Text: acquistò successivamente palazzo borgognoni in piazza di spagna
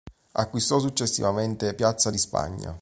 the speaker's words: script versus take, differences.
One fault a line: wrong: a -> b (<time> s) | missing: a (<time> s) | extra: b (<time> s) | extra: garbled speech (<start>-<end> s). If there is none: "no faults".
missing: palazzo borgognoni in (1.8 s)